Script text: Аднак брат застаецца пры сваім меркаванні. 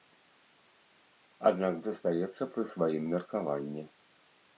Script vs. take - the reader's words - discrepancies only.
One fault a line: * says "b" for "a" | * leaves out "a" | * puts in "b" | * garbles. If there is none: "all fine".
* leaves out "брат"